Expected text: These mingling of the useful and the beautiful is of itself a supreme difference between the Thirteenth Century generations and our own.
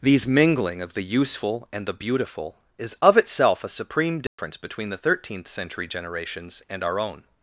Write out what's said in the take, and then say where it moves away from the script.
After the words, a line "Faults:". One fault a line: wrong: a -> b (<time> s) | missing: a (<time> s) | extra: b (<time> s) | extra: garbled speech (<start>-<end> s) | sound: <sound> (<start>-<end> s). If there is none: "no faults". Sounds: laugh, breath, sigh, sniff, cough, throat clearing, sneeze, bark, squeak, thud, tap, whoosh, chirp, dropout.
These mingling of the useful and the beautiful is of itself a supreme difference between the Thirteenth Century generations and our own.
Faults:
sound: dropout (4.3-4.4 s)